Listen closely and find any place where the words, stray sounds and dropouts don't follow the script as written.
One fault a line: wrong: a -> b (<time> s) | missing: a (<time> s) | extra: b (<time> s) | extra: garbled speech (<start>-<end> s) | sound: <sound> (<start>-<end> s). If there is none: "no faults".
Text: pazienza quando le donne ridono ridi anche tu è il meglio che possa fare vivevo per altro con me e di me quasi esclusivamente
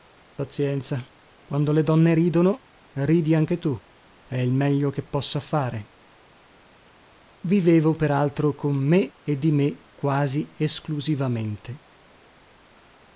no faults